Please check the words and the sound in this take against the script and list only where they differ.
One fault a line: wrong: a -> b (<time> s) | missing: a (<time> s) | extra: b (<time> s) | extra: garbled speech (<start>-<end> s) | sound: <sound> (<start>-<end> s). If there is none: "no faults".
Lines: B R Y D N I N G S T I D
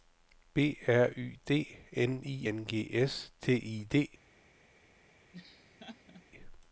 sound: laugh (5.3-6.2 s)